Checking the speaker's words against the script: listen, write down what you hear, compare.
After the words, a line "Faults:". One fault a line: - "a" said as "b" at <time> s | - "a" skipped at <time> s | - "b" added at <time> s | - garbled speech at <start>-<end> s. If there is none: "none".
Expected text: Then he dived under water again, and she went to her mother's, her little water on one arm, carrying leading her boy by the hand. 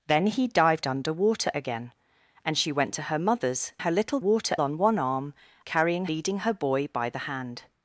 Then he dived under water again, and she went to her mother's, her little water on one arm, carrying leading her boy by the hand.
Faults:
none